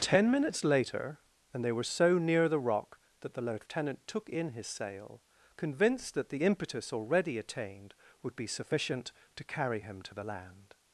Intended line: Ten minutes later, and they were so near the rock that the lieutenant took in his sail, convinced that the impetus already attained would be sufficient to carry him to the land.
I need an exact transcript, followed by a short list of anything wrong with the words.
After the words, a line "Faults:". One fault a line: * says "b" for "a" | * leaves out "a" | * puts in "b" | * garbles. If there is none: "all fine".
Ten minutes later, and they were so near the rock that the lieutenant took in his sail, convinced that the impetus already attained would be sufficient to carry him to the land.
Faults:
all fine